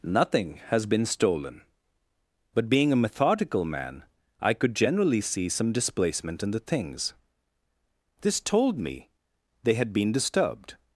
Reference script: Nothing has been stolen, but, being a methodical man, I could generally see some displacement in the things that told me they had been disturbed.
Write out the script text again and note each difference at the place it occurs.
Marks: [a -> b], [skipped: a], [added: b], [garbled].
Nothing has been stolen, but, being a methodical man, I could generally see some displacement in the things [that -> this] told me they had been disturbed.